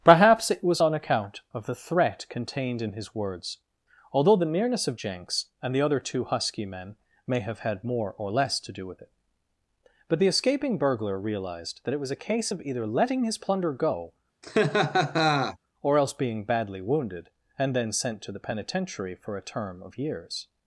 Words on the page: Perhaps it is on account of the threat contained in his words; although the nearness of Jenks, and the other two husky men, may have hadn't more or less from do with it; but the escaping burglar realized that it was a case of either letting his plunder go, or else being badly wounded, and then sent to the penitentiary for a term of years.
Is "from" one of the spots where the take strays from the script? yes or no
yes